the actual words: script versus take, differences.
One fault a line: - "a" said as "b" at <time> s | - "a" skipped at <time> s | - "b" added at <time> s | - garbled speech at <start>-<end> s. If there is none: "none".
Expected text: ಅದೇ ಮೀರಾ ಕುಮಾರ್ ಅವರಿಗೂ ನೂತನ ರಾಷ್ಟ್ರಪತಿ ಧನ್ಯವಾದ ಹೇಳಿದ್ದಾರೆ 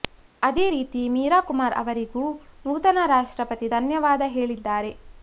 - "ರೀತಿ" added at 0.7 s